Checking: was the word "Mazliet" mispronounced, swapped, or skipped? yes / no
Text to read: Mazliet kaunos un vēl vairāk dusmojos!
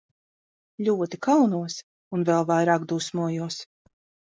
yes